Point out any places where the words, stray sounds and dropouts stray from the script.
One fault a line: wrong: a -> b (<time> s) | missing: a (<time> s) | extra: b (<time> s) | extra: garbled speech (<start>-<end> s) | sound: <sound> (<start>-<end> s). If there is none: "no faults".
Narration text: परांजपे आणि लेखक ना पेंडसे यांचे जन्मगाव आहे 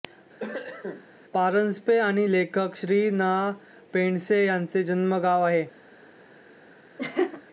sound: cough (0.4-1.1 s)
extra: श्री (2.8 s)
sound: laugh (7.0-7.4 s)